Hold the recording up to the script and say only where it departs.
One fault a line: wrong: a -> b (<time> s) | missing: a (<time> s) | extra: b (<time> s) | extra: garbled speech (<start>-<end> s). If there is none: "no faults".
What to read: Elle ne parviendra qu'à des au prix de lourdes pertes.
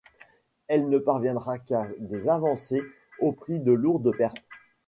extra: avancées (2.3 s)